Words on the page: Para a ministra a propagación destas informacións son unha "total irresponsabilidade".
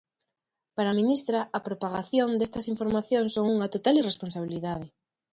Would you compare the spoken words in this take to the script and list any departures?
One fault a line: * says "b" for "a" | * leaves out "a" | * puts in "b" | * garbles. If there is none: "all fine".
all fine